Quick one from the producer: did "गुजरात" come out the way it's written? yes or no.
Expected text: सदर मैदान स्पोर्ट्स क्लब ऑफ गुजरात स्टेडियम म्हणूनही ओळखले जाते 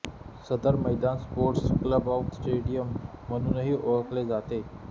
no